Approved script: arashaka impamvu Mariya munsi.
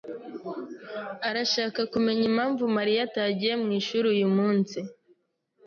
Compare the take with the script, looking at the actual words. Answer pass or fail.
fail